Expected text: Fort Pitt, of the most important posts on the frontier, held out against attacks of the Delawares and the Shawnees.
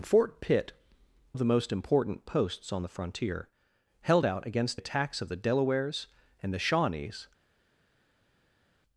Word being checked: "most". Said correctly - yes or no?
yes